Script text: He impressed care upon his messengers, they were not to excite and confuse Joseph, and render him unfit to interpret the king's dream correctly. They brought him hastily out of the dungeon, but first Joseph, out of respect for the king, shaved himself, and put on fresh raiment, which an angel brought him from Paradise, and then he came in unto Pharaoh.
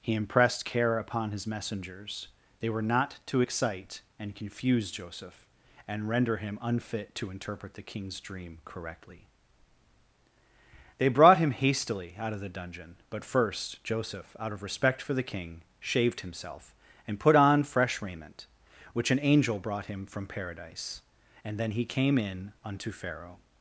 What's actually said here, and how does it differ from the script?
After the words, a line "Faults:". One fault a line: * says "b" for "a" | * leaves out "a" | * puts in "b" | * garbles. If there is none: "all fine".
He impressed care upon his messengers, they were not to excite and confuse Joseph, and render him unfit to interpret the king's dream correctly. They brought him hastily out of the dungeon, but first Joseph, out of respect for the king, shaved himself, and put on fresh raiment, which an angel brought him from Paradise, and then he came in unto Pharaoh.
Faults:
all fine